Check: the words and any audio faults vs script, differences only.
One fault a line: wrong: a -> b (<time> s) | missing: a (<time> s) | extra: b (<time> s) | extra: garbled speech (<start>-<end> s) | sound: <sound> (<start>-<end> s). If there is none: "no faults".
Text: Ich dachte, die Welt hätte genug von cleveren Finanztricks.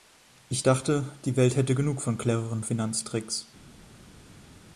no faults